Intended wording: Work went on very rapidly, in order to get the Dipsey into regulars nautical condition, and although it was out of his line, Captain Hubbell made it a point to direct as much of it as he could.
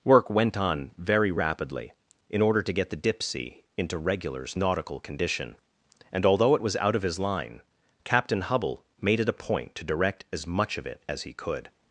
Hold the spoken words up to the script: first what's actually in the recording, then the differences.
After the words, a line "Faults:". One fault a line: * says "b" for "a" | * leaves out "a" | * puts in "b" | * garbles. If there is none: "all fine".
Work went on very rapidly, in order to get the Dipsey into regulars nautical condition, and although it was out of his line, Captain Hubbell made it a point to direct as much of it as he could.
Faults:
all fine